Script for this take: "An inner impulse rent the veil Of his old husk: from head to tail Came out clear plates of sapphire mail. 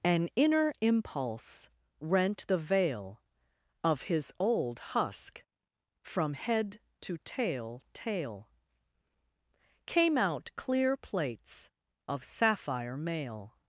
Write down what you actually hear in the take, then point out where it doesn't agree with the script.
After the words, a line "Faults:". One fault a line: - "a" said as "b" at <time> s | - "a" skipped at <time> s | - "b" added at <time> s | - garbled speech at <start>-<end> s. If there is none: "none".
"An inner impulse rent the veil Of his old husk: from head to tail tail Came out clear plates of sapphire mail.
Faults:
- "tail" added at 7.9 s